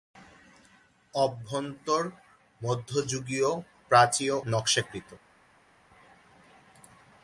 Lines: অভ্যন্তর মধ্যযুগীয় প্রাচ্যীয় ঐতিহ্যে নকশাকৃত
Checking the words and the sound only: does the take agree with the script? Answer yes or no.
no